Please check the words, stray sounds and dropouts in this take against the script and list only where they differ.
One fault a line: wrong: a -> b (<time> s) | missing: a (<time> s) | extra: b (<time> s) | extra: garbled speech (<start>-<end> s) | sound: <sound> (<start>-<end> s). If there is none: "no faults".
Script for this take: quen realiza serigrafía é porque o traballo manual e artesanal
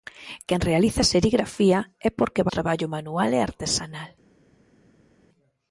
no faults